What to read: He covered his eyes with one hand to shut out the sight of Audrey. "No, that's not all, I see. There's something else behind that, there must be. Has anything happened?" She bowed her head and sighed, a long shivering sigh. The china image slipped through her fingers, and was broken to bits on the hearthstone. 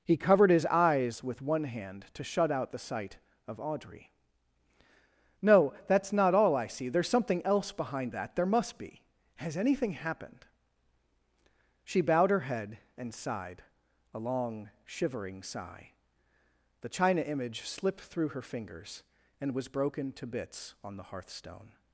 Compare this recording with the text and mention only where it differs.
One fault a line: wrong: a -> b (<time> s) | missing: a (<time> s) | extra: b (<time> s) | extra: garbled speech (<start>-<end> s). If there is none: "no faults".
no faults